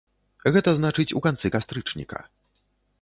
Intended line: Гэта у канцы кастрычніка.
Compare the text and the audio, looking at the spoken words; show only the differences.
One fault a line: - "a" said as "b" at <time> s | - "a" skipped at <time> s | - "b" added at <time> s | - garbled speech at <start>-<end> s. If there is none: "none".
- "значыць" added at 0.8 s